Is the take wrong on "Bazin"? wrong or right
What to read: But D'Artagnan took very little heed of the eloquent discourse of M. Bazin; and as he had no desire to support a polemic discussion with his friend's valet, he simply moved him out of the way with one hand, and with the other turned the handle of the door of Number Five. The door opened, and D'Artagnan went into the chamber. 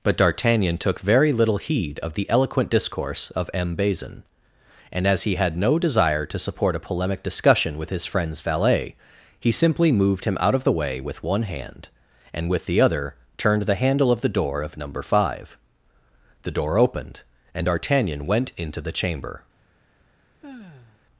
right